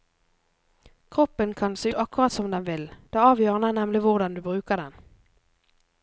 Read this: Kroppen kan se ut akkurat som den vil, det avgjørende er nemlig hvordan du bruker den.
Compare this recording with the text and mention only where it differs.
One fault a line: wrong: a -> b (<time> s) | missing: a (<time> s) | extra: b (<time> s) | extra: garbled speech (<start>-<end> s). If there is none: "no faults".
missing: ut (1.9 s)